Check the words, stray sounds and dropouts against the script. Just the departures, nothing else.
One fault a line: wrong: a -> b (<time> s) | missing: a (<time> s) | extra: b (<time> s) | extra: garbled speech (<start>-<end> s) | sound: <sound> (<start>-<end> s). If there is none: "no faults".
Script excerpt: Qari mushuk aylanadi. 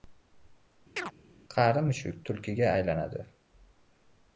sound: chirp (1.0-1.1 s)
extra: tulkiga (2.3 s)